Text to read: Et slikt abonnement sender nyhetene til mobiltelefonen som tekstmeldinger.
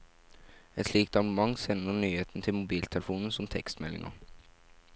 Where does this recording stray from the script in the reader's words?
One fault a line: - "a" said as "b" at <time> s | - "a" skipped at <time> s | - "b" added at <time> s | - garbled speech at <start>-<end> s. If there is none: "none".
none